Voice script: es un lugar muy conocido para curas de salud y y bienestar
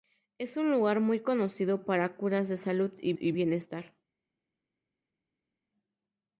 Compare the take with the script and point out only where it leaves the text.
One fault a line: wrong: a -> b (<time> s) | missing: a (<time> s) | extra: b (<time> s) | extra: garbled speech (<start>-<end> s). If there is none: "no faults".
no faults